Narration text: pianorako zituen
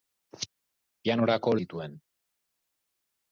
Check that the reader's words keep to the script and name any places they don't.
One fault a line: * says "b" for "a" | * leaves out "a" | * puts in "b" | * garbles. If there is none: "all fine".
all fine